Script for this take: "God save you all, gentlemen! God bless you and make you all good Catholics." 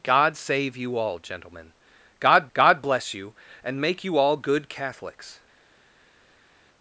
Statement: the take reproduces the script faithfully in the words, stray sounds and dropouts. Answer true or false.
false